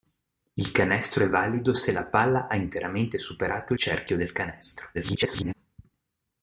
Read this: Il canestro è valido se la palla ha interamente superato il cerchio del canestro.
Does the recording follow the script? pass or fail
fail